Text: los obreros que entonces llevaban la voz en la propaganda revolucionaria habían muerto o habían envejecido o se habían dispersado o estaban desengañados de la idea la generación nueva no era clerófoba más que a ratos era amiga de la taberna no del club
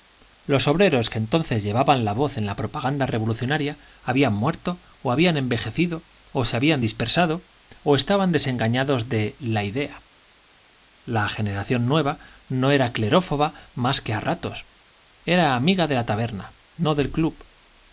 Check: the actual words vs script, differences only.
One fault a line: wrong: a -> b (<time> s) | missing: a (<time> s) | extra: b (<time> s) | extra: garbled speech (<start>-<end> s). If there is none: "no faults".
no faults